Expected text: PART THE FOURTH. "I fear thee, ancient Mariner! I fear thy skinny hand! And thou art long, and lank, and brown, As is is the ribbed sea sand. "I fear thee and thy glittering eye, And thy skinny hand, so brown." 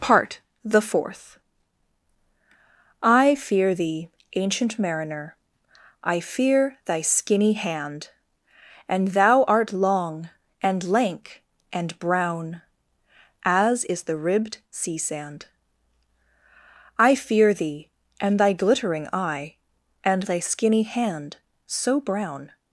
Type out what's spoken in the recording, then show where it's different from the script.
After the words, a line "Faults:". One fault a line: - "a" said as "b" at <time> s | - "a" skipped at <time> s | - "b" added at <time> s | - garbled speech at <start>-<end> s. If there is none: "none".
PART THE FOURTH. "I fear thee, ancient Mariner! I fear thy skinny hand! And thou art long, and lank, and brown, As is the ribbed sea sand. "I fear thee and thy glittering eye, And thy skinny hand, so brown."
Faults:
- "is" skipped at 14.0 s